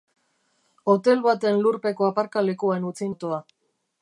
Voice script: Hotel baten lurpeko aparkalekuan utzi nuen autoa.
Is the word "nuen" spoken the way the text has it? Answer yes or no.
no